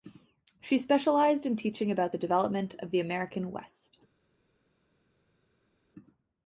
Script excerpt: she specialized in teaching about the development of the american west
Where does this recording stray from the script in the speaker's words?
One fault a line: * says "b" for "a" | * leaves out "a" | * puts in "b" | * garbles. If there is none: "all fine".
all fine